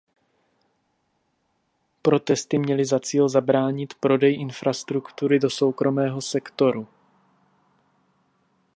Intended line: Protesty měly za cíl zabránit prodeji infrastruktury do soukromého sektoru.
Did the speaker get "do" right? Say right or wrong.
right